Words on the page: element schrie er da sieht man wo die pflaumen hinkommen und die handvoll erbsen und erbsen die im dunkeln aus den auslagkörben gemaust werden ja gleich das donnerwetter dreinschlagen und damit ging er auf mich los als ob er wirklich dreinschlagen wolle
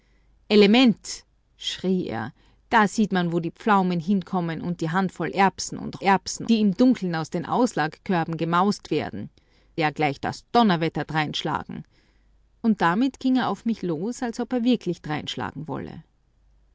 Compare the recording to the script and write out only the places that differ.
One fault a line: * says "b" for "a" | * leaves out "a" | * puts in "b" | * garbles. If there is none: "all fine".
all fine